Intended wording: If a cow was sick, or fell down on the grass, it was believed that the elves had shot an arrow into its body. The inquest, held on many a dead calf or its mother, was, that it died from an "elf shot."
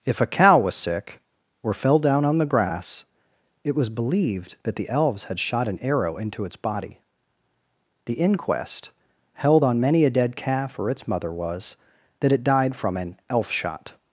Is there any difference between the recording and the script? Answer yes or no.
no